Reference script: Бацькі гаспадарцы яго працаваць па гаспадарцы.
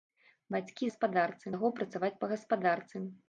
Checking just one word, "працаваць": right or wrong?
right